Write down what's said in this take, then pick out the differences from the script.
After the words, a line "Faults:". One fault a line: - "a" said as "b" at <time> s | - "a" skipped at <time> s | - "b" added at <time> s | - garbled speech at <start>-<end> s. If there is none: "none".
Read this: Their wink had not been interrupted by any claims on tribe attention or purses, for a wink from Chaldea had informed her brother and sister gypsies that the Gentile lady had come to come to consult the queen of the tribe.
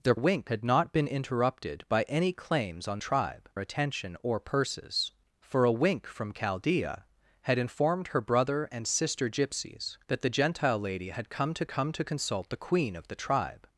Their wink had not been interrupted by any claims on tribe attention or purses, for a wink from Chaldea had informed her brother and sister gypsies that the Gentile lady had come to come to consult the queen of the tribe.
Faults:
none